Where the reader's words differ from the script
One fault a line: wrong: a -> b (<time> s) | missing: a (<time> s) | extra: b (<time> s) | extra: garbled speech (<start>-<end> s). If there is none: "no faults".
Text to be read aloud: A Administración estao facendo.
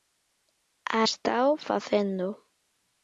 missing: Administración (1.0 s)